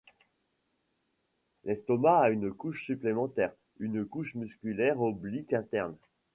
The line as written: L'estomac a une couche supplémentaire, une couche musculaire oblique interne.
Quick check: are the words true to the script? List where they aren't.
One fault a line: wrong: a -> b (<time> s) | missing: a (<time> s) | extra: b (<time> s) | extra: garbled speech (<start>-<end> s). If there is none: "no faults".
no faults